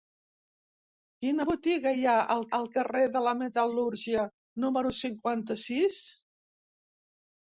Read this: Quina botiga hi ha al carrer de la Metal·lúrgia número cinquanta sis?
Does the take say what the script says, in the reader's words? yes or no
no